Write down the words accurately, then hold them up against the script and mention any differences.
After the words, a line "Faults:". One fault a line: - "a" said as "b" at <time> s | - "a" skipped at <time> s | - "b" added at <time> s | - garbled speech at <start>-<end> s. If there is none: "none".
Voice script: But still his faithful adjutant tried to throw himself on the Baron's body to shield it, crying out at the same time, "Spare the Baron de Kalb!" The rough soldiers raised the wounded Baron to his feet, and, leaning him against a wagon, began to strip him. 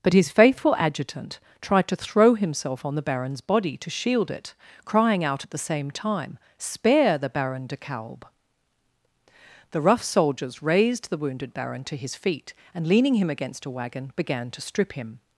But his faithful adjutant tried to throw himself on the Baron's body to shield it, crying out at the same time, "Spare the Baron de Kalb!" The rough soldiers raised the wounded Baron to his feet, and, leaning him against a wagon, began to strip him.
Faults:
- "still" skipped at 0.1 s